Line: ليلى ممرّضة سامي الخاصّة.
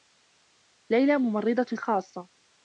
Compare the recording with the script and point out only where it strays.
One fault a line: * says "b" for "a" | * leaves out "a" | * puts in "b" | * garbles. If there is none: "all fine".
* leaves out "سامي"